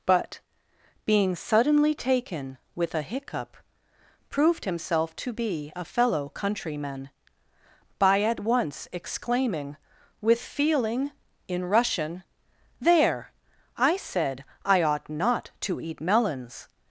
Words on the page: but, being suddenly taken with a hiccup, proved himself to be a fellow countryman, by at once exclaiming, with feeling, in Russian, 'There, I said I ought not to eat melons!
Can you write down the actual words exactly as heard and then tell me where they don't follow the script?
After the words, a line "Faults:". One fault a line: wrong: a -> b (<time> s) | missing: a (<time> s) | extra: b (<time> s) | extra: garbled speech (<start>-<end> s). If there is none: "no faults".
but, being suddenly taken with a hiccup, proved himself to be a fellow countryman, by at once exclaiming, with feeling, in Russian, 'There, I said I ought not to eat melons!
Faults:
no faults